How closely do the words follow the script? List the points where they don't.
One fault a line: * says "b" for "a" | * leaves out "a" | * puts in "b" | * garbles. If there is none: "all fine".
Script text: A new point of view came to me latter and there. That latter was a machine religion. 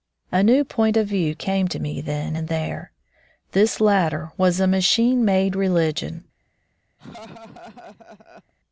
* says "then" for "latter"
* says "This" for "That"
* puts in "made"